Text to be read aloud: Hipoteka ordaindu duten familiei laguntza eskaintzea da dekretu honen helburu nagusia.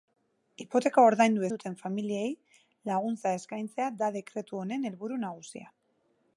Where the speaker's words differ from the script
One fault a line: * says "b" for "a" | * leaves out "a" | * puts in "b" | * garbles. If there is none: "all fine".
all fine